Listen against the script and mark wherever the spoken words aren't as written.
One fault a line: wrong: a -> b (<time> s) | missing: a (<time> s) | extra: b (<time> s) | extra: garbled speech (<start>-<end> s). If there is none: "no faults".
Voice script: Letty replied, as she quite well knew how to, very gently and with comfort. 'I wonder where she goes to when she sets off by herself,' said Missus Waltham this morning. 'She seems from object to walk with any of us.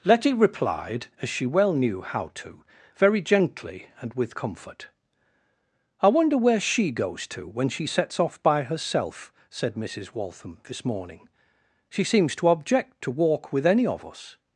missing: quite (1.4 s)
wrong: from -> to (12.3 s)